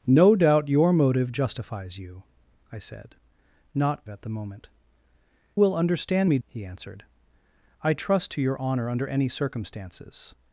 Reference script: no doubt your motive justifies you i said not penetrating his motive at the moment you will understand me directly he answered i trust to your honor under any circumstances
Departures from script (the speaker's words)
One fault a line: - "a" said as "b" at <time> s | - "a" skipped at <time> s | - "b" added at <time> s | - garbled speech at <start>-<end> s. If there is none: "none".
- "penetrating his motive" skipped at 4.1 s
- "you" skipped at 4.7 s
- "directly" skipped at 6.4 s